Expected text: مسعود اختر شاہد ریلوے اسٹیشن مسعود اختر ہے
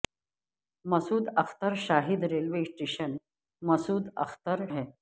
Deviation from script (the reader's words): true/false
false